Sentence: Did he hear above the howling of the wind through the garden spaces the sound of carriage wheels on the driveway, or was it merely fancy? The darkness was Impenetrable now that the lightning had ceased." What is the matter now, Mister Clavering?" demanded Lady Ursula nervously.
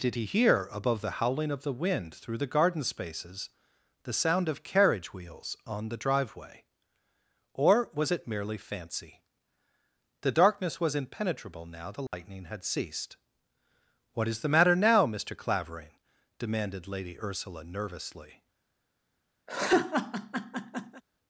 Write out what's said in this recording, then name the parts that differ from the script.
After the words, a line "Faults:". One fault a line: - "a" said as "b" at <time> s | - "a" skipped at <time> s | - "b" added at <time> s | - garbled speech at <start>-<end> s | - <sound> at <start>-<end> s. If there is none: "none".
Did he hear above the howling of the wind through the garden spaces the sound of carriage wheels on the driveway, or was it merely fancy? The darkness was Impenetrable now the lightning had ceased." What is the matter now, Mister Clavering?" demanded Lady Ursula nervously.
Faults:
- "that" skipped at 11.9 s
- dropout at 12.1-12.1 s
- laugh at 19.5-21.0 s